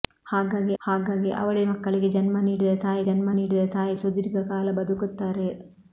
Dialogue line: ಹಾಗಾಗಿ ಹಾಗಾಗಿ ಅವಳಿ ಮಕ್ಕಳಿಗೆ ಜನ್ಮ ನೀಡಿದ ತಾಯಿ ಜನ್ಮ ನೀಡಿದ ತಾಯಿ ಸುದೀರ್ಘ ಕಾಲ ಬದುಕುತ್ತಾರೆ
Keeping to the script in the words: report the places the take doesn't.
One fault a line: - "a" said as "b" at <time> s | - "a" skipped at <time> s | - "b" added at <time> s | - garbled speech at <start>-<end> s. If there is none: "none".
none